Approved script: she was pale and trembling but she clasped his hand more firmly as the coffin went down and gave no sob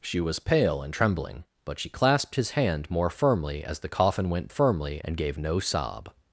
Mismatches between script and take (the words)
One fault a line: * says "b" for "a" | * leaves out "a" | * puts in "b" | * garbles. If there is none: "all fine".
* says "firmly" for "down"